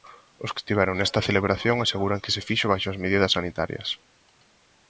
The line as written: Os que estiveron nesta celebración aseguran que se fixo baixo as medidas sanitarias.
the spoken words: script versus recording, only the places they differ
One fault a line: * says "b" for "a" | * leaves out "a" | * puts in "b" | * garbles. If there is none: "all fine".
all fine